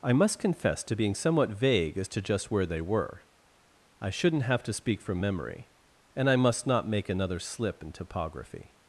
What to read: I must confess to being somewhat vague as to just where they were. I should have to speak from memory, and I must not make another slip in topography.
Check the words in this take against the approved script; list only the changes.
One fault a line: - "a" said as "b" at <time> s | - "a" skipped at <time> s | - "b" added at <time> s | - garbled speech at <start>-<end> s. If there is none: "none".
- "should" said as "shouldn't" at 4.1 s